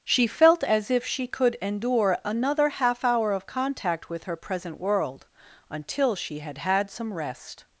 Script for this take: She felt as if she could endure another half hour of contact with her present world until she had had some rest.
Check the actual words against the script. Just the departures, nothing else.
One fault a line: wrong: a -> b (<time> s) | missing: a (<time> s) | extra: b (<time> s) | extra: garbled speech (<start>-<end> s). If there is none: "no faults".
no faults